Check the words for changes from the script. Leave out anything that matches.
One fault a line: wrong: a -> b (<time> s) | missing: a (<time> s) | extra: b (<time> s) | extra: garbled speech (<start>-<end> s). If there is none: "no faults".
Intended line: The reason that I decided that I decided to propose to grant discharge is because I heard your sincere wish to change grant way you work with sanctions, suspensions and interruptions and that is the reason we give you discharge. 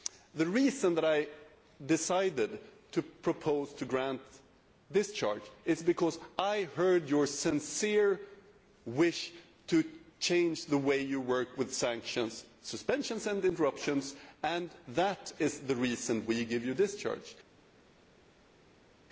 missing: that I decided (2.6 s)
wrong: grant -> the (10.7 s)